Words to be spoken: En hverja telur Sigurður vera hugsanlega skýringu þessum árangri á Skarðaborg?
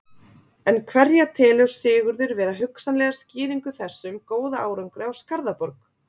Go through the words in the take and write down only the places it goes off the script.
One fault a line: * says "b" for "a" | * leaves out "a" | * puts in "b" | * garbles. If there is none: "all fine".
* puts in "góða"